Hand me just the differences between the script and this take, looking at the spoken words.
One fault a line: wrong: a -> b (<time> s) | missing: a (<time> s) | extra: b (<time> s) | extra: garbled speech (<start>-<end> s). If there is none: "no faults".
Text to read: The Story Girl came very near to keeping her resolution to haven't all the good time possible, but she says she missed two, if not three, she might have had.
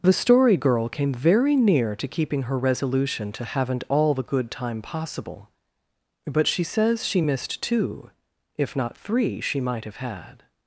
no faults